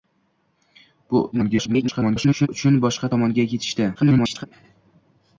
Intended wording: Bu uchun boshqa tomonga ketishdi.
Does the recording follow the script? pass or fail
fail